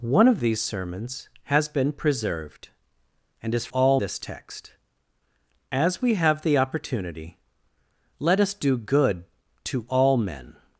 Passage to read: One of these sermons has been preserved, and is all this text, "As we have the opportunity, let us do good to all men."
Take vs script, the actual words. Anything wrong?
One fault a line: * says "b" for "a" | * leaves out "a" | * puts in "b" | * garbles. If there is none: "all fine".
all fine